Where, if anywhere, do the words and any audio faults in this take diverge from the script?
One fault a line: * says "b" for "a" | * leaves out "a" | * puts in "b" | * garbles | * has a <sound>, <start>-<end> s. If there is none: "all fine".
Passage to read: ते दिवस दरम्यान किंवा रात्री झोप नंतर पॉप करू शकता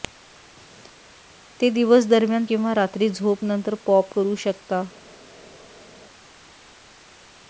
all fine